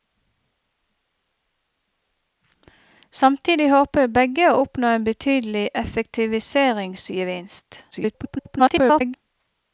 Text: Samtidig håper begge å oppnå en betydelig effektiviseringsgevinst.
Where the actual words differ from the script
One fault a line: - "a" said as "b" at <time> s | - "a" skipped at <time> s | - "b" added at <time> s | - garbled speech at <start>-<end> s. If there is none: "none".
- garbled speech at 7.9-9.2 s